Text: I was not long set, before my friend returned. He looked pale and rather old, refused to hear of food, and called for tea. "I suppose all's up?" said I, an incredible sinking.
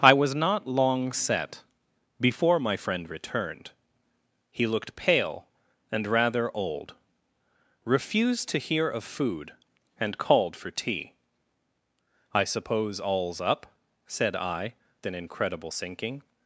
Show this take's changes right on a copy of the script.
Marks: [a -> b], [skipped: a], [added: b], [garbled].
I was not long set, before my friend returned. He looked pale and rather old, refused to hear of food, and called for tea. "I suppose all's up?" said I, an incredible sinking.